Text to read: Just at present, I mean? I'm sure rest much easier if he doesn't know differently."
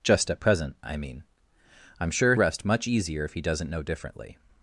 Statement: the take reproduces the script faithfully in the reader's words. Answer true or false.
true